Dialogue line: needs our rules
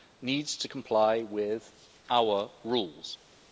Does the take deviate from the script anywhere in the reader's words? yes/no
yes